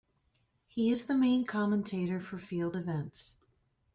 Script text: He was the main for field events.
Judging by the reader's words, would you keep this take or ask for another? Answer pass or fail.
fail